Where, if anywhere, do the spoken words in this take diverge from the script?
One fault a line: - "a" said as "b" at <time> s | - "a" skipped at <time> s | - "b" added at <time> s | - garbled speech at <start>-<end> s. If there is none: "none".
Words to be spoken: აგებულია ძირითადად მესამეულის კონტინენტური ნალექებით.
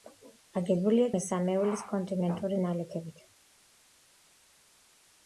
- "ძირითადად" skipped at 1.1 s